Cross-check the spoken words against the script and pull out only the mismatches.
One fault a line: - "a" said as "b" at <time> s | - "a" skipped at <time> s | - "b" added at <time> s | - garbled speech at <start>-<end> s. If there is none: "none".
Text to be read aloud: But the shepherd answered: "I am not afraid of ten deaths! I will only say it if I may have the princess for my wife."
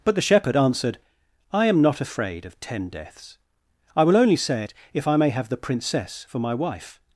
none